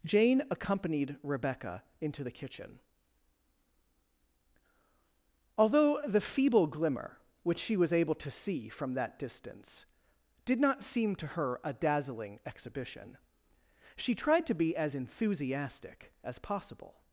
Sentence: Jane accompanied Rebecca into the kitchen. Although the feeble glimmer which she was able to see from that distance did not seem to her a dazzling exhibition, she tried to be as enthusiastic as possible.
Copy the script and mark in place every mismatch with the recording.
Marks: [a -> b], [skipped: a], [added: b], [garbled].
Jane accompanied Rebecca into the kitchen. Although the feeble glimmer which she was able to see from that distance did not seem to her a dazzling exhibition, she tried to be as enthusiastic as possible.